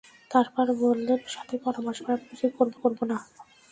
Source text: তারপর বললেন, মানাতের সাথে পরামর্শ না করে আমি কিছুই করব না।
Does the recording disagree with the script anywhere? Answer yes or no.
yes